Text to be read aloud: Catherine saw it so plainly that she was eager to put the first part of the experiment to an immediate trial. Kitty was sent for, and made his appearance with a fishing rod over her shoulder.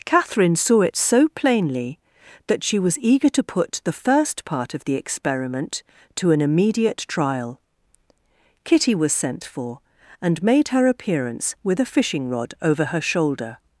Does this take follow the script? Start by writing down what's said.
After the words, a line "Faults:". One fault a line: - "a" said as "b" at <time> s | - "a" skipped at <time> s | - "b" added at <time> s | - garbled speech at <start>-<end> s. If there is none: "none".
Catherine saw it so plainly that she was eager to put the first part of the experiment to an immediate trial. Kitty was sent for, and made her appearance with a fishing rod over her shoulder.
Faults:
- "his" said as "her" at 10.7 s